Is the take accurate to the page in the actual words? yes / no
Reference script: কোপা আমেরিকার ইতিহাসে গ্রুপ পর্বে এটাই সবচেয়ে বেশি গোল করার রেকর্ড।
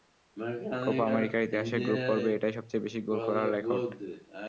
yes